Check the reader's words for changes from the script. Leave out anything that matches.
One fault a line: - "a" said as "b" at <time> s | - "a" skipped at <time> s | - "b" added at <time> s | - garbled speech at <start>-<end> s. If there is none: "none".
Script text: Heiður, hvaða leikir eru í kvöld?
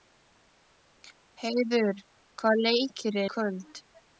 - "eru" skipped at 3.2 s